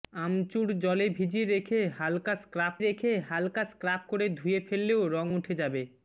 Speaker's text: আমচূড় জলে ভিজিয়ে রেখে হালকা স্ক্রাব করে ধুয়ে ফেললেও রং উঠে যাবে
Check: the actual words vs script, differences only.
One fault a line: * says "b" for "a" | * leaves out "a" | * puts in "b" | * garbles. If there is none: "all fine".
* puts in "রেখে হালকা স্ক্রাব"